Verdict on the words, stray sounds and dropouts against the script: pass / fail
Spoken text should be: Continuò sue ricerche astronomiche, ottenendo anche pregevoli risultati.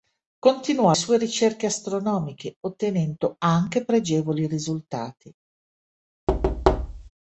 fail